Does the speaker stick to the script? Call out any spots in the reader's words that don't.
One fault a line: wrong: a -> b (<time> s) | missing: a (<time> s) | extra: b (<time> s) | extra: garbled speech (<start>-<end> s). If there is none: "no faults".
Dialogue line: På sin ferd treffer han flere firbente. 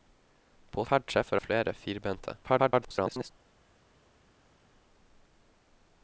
missing: sin (0.8 s)
missing: han (1.4 s)
extra: garbled speech (2.4-3.3 s)